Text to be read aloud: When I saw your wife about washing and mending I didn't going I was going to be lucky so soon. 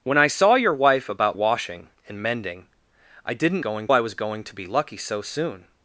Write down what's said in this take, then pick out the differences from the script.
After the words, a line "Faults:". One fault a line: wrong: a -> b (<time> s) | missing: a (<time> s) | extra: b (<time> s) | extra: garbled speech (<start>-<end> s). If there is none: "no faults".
When I saw your wife about washing and mending I didn't going I was going to be lucky so soon.
Faults:
no faults